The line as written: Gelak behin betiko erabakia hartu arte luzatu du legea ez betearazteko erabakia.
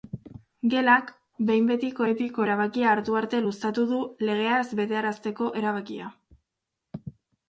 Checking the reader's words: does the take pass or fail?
fail